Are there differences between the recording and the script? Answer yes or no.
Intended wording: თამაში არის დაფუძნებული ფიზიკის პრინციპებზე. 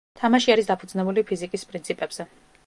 no